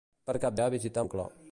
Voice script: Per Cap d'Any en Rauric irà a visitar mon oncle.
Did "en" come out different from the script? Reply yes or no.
yes